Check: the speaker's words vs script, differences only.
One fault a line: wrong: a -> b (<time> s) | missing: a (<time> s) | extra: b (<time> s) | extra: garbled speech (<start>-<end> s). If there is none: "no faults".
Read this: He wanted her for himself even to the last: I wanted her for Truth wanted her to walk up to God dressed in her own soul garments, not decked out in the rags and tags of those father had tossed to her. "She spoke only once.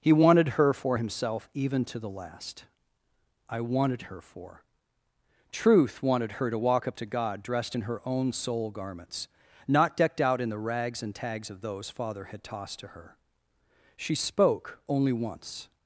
no faults